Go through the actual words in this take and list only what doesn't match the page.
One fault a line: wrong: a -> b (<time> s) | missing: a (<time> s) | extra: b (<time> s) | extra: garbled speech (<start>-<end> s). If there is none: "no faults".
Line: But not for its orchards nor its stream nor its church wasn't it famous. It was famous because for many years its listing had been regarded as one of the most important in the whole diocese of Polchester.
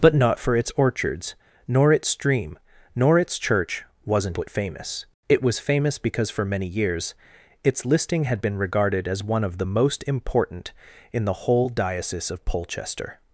no faults